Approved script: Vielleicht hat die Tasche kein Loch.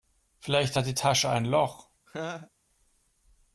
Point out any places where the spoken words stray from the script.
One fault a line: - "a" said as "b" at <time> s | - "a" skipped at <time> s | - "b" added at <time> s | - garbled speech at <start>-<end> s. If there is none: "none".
- "kein" said as "ein" at 1.3 s